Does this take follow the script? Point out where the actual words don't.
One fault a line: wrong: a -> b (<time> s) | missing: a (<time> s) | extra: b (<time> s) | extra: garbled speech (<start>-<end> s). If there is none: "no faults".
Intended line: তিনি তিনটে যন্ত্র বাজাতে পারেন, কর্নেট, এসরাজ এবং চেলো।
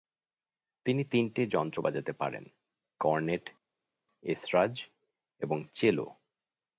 no faults